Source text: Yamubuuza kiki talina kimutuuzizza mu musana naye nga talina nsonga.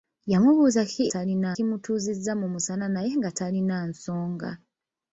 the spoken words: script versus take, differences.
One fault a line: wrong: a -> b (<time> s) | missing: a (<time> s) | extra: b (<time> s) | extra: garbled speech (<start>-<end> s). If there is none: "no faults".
no faults